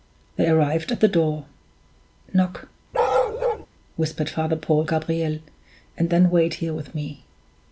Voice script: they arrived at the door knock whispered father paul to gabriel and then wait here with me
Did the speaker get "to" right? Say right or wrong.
wrong